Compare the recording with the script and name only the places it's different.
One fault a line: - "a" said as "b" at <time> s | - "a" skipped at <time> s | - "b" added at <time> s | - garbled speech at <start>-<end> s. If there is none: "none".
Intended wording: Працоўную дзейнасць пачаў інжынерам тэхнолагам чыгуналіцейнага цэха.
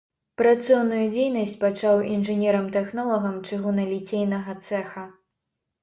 none